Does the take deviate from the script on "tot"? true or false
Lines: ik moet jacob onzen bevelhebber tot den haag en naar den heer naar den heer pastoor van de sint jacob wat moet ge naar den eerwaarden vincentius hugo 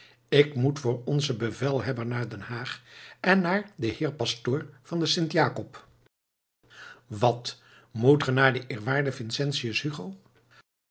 true